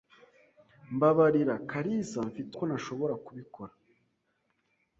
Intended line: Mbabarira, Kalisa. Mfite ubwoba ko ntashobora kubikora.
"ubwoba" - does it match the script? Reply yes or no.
no